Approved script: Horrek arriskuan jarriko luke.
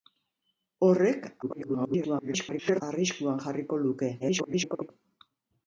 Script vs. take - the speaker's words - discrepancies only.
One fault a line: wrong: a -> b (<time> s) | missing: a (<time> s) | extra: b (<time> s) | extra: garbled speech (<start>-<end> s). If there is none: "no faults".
extra: garbled speech (1.4-2.8 s)
extra: garbled speech (4.2-4.9 s)